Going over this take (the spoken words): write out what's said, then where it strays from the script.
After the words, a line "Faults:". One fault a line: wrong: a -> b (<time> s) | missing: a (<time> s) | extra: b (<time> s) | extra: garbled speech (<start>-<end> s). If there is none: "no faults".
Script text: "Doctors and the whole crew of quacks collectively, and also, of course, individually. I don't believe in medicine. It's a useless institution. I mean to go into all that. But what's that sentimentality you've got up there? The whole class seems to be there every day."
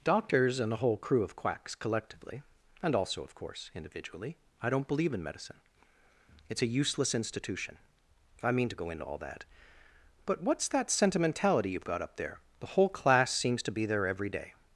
"Doctors and the whole crew of quacks collectively, and also, of course, individually. I don't believe in medicine. It's a useless institution. I mean to go into all that. But what's that sentimentality you've got up there? The whole class seems to be there every day."
Faults:
no faults